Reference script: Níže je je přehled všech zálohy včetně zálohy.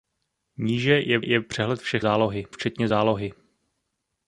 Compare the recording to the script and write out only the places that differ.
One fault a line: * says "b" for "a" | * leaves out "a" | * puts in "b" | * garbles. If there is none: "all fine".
all fine